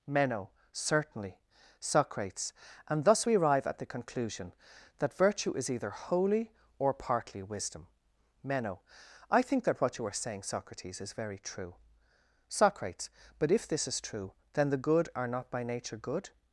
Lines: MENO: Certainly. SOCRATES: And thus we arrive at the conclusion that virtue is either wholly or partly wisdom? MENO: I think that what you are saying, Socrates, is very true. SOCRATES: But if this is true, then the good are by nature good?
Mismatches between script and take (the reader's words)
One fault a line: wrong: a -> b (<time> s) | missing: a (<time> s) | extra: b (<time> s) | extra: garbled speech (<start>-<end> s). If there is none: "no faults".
extra: not (15.3 s)